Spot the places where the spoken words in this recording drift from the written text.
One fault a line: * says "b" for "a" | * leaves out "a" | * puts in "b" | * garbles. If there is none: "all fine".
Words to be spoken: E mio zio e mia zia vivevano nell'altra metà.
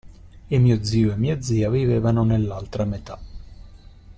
all fine